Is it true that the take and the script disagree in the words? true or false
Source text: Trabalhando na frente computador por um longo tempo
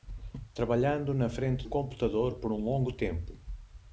false